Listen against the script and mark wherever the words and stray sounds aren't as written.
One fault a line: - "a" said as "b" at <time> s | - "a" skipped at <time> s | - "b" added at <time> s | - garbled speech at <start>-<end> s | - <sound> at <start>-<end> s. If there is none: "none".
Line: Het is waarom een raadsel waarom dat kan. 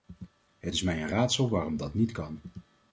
- "waarom" said as "mij" at 0.8 s
- "niet" added at 1.9 s